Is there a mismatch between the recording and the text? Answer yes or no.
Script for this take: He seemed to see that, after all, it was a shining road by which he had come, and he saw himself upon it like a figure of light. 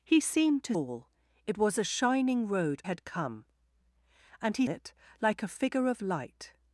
yes